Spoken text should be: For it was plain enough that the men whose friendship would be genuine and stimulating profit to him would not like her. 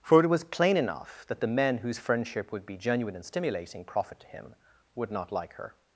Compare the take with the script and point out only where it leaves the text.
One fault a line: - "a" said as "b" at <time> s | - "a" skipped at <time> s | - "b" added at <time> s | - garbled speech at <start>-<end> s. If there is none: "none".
none